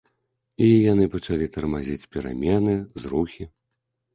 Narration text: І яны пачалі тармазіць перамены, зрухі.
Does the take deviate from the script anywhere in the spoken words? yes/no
no